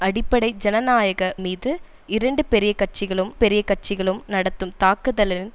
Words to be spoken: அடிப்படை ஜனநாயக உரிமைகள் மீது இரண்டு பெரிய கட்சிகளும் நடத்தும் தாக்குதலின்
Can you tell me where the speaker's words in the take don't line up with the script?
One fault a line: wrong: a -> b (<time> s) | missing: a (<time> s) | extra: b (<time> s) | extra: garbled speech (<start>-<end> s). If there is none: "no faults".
missing: உரிமைகள் (1.3 s)
extra: பெரிய கட்சிகளும் (3.3 s)